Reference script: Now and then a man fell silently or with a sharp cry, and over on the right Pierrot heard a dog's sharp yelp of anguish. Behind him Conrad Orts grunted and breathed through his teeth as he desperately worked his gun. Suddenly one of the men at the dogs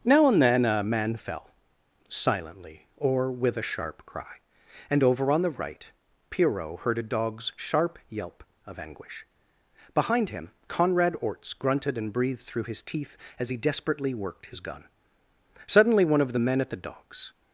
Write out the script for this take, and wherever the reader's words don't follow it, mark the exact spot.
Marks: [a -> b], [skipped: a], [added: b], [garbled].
Now and then a man fell silently or with a sharp cry, and over on the right Pierrot heard a dog's sharp yelp of anguish. Behind him Conrad Orts grunted and breathed through his teeth as he desperately worked his gun. Suddenly one of the men at the dogs